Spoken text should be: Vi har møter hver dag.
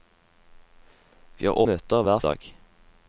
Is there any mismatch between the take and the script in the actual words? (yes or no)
no